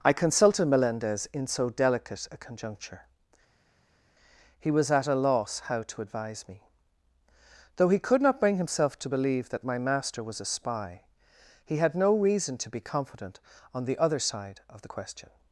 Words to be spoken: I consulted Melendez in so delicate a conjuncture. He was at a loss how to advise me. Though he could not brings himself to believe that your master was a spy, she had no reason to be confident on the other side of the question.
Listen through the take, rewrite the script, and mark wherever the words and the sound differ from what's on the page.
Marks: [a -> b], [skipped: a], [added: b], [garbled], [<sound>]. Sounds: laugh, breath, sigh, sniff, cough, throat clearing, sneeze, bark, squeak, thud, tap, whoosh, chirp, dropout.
I consulted Melendez in so delicate a conjuncture. He was at a loss how to advise me. Though he could not [brings -> bring] himself to believe that [your -> my] master was a spy, [she -> he] had no reason to be confident on the other side of the question.